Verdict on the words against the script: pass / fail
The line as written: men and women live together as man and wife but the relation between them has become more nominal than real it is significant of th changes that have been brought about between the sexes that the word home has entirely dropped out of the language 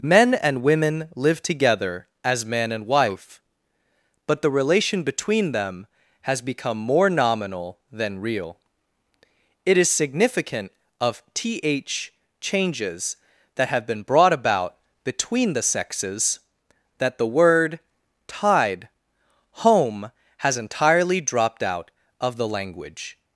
fail